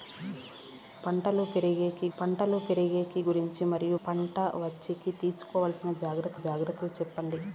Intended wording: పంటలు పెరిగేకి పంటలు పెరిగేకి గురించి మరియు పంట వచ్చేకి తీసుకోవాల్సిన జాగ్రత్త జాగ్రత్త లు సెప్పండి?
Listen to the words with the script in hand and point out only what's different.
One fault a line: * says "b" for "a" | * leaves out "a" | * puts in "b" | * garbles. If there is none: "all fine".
all fine